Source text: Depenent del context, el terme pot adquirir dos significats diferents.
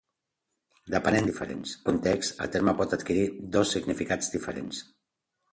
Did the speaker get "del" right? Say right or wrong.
wrong